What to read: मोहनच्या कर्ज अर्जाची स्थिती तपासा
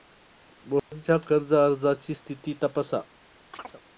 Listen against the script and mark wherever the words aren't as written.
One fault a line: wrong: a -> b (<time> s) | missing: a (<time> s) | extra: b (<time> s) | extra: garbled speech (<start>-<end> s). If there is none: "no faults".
no faults